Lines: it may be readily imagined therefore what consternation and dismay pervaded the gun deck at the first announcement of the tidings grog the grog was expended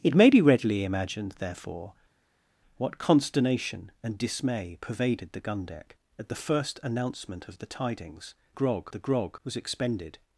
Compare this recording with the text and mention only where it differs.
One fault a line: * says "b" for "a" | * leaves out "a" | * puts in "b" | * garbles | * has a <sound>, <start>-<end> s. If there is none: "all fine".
all fine